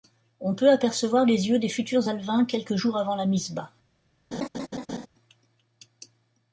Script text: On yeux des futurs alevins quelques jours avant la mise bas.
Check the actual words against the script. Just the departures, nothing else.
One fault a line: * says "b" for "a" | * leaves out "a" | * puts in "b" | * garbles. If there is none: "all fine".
* puts in "peut apercevoir les"